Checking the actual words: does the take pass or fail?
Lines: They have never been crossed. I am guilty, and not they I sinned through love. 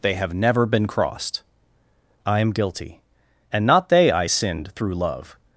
pass